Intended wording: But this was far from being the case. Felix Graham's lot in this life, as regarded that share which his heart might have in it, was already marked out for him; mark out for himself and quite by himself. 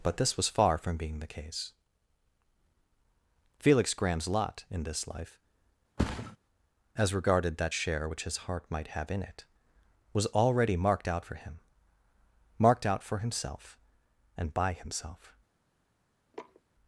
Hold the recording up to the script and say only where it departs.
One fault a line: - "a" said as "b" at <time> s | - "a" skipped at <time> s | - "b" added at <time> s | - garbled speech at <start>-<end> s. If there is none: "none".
- "mark" said as "marked" at 12.6 s
- "quite" skipped at 14.5 s